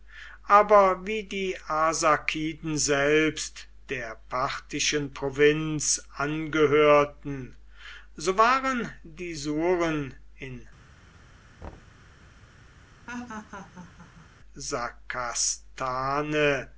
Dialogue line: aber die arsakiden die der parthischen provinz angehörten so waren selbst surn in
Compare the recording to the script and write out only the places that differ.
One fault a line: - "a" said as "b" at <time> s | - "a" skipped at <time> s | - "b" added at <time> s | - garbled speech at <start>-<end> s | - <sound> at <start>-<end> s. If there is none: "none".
- "wie" added at 1.1 s
- "die" said as "selbst" at 2.8 s
- "selbst" said as "die" at 9.0 s
- thud at 11.6-12.1 s
- laugh at 13.1-14.3 s